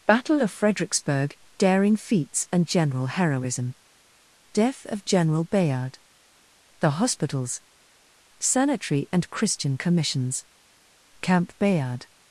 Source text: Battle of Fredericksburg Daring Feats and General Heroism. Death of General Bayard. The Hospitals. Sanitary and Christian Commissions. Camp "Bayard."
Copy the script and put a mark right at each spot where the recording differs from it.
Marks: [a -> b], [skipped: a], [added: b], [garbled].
Battle of Fredericksburg Daring Feats and General Heroism. Death of General Bayard. The Hospitals. Sanitary and Christian Commissions. Camp "Bayard."